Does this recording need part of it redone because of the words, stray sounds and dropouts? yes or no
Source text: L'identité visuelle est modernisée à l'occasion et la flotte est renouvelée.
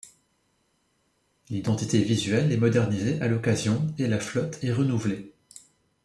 no